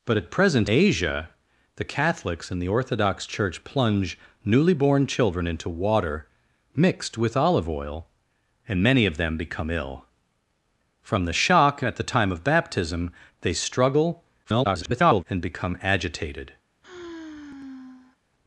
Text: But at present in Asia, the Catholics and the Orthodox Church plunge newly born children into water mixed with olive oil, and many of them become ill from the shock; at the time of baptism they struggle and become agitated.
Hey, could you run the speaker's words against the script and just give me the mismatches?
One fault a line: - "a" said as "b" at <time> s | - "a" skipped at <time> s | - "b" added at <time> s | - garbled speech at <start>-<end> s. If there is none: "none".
- "in" skipped at 0.7 s
- garbled speech at 14.4-15.2 s